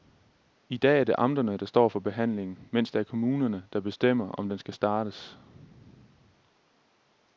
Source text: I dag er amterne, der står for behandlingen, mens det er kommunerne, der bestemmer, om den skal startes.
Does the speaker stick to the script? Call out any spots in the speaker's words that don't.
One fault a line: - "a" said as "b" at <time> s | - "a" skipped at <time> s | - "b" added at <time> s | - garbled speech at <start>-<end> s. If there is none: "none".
- "det" added at 1.0 s